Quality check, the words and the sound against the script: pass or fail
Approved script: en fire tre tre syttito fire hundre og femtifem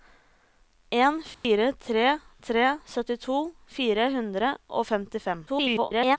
fail